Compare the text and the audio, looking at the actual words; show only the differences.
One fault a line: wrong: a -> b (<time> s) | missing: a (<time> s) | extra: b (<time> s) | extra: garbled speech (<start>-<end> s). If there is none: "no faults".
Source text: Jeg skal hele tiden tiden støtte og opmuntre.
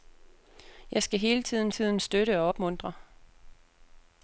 no faults